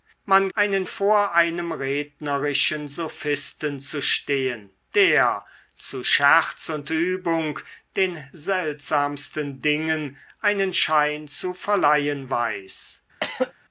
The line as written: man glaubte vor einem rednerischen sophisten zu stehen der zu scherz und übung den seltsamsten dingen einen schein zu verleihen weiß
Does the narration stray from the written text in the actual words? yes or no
yes